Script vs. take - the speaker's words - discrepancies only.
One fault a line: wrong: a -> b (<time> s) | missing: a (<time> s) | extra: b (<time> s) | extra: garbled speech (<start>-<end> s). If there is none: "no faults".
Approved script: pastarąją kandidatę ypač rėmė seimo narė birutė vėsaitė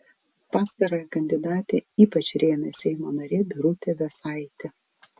no faults